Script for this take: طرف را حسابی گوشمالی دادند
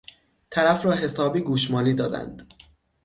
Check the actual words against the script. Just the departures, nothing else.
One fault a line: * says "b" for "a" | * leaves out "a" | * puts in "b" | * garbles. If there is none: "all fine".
all fine